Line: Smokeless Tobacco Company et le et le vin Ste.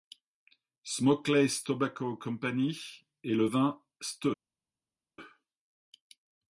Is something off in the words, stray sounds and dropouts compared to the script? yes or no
yes